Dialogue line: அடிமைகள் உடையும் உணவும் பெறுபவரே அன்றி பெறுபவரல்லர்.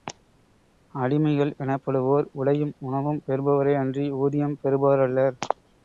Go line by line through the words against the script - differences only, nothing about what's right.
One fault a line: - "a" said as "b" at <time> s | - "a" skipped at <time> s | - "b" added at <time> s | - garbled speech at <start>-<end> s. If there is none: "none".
- "எனப்படுவோர்" added at 1.6 s
- "ஊதியம்" added at 4.2 s